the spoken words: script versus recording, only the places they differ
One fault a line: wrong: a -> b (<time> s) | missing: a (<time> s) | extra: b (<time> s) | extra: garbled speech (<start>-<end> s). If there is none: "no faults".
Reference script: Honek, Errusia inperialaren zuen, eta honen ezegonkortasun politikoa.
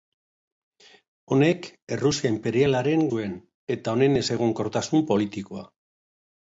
no faults